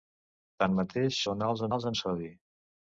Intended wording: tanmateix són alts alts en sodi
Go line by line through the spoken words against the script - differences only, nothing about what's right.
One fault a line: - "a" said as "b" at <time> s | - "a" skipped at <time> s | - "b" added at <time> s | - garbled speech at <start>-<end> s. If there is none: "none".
none